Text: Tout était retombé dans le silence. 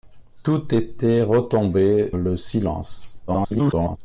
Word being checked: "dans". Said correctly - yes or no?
no